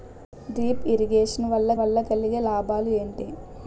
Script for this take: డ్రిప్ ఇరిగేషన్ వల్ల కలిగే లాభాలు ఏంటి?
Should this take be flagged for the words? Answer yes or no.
yes